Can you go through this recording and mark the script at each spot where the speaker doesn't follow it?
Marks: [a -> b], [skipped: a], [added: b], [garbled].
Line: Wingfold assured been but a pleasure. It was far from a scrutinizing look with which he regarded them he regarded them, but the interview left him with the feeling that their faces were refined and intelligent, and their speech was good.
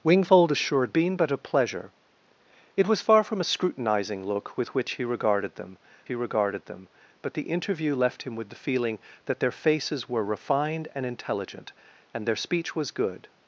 Wingfold assured been but a pleasure. It was far from a scrutinizing look with which he regarded them he regarded them, but the interview left him with the feeling that their faces were refined and intelligent, and their speech was good.